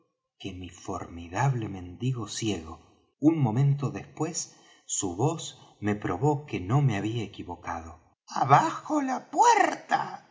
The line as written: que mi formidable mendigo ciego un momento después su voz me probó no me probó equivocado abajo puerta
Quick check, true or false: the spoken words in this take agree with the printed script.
false